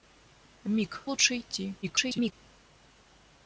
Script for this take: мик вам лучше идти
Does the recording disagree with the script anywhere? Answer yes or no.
yes